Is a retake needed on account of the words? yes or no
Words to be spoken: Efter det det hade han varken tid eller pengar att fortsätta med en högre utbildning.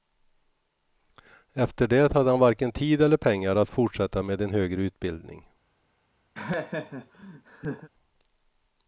yes